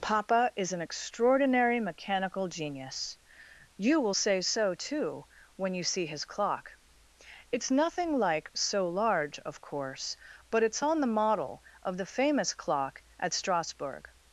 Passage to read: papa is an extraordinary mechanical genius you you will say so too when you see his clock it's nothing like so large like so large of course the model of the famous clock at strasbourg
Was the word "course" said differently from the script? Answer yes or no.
yes